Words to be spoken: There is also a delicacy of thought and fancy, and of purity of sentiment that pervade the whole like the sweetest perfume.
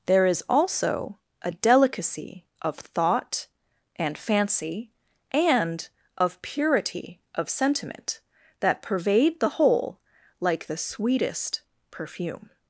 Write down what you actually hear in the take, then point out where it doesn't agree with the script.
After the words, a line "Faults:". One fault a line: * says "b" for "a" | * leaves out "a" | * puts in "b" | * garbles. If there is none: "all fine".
There is also a delicacy of thought and fancy, and of purity of sentiment that pervade the whole like the sweetest perfume.
Faults:
all fine